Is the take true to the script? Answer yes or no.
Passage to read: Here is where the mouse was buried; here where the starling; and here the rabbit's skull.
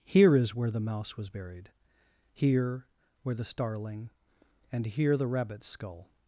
yes